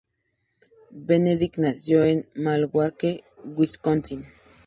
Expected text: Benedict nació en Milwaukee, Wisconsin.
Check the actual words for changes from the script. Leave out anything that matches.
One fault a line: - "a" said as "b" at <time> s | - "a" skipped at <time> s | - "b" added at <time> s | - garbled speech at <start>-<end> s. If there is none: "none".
none